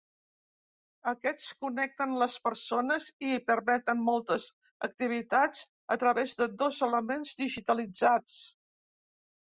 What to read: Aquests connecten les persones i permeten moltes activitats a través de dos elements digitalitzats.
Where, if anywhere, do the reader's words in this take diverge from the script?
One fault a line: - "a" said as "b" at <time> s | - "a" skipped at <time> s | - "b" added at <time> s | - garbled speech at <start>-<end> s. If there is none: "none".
none